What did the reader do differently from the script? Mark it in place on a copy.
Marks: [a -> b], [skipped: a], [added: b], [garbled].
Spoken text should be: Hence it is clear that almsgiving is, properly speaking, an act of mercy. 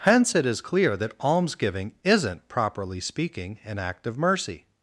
Hence it is clear that almsgiving [is, -> isn't] properly speaking, an act of mercy.